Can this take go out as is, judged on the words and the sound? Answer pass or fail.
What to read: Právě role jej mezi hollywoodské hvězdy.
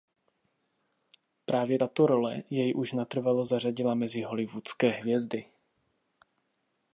fail